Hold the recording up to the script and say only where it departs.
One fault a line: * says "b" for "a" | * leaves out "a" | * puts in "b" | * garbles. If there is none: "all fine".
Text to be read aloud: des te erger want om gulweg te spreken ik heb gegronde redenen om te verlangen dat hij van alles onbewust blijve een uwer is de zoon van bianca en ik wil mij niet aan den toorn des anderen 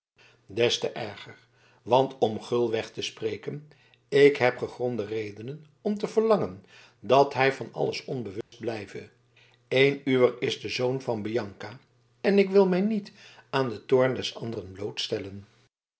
all fine